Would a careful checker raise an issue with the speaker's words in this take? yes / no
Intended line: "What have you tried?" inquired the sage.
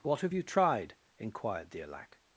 yes